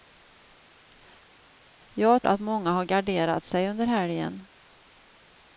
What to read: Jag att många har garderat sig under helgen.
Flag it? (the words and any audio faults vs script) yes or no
no